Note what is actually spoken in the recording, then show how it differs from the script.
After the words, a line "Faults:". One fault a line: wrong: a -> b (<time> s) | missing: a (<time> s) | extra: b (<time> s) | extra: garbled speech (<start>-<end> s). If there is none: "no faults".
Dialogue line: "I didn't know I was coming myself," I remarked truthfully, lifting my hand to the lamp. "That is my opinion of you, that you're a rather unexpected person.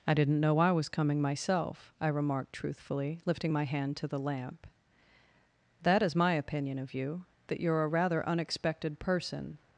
"I didn't know I was coming myself," I remarked truthfully, lifting my hand to the lamp. "That is my opinion of you, that you're a rather unexpected person.
Faults:
no faults